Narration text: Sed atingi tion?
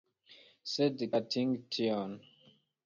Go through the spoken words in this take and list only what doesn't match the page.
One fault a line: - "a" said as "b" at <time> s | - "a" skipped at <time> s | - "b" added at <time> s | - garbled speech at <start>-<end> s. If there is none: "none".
none